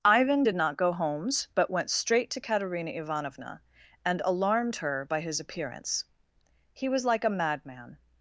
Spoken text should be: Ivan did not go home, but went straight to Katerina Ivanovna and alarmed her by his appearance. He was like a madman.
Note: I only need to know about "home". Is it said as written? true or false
false